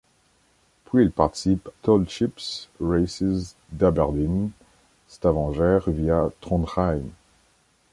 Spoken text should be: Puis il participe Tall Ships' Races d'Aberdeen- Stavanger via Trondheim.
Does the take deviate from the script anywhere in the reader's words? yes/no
no